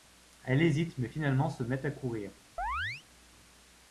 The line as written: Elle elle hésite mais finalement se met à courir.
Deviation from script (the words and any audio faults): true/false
true